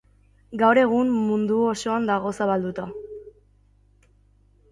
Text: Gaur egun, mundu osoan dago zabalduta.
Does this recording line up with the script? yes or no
yes